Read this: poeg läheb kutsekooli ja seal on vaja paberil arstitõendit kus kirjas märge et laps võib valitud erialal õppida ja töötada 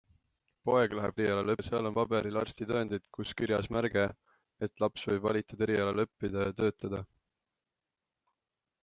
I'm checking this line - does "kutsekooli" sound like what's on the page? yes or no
no